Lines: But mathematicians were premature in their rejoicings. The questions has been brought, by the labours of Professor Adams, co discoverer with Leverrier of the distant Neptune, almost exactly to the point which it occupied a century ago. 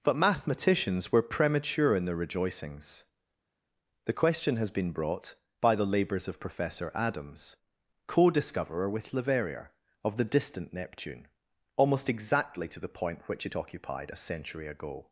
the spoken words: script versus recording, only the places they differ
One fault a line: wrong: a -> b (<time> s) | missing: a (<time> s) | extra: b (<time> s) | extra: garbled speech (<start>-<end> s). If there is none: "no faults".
wrong: questions -> question (4.1 s)